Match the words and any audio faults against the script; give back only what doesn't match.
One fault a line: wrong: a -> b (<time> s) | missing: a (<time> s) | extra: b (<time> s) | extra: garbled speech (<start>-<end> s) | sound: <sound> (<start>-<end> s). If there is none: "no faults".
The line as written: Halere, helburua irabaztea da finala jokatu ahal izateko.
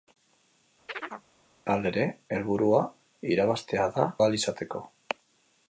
sound: chirp (0.9-1.3 s)
missing: finala jokatu (4.1 s)